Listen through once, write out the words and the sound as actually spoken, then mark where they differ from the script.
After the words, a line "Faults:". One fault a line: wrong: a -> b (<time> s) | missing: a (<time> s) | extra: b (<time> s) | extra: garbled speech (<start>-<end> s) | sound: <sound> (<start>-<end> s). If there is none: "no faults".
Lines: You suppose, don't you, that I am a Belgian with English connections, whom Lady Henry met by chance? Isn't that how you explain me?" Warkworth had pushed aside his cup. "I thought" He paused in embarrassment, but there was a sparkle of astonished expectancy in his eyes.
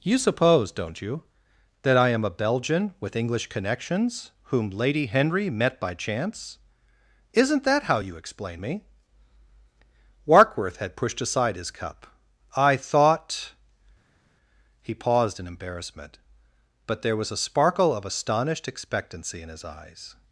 You suppose, don't you, that I am a Belgian with English connections, whom Lady Henry met by chance? Isn't that how you explain me?" Warkworth had pushed aside his cup. "I thought" He paused in embarrassment, but there was a sparkle of astonished expectancy in his eyes.
Faults:
no faults